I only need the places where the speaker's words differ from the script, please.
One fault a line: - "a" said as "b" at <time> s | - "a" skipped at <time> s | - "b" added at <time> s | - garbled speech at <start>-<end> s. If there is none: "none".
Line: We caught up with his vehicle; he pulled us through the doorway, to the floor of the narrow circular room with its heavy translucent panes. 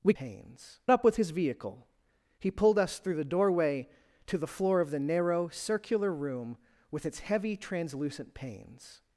- "caught" said as "panes" at 0.1 s